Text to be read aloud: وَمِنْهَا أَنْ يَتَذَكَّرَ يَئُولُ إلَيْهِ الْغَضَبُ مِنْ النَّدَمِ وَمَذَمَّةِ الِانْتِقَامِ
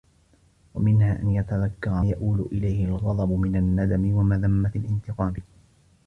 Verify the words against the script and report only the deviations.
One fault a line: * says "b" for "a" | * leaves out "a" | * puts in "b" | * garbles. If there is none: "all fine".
all fine